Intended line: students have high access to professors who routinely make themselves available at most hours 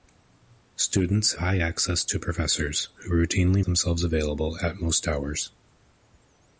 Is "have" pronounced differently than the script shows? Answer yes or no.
yes